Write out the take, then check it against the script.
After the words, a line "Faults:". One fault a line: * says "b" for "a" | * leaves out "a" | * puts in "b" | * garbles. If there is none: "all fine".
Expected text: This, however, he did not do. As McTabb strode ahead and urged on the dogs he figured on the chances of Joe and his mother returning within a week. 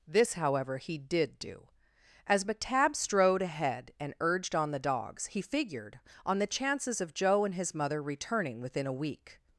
This, however, he did do. As McTabb strode ahead and urged on the dogs he figured on the chances of Joe and his mother returning within a week.
Faults:
* leaves out "not"